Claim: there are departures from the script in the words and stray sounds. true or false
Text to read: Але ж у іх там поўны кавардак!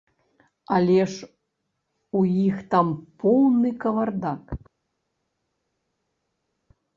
false